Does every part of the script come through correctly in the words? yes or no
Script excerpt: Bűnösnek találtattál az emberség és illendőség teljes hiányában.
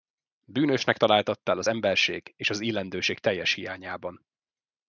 no